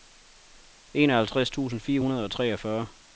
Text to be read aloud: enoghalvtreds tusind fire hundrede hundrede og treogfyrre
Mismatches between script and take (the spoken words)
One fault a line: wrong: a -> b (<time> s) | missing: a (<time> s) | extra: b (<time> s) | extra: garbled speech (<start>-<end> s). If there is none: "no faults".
missing: hundrede (2.2 s)